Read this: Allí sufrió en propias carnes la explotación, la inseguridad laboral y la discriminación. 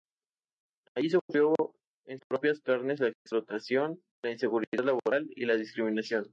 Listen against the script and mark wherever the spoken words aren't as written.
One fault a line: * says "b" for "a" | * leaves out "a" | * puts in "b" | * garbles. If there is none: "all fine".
all fine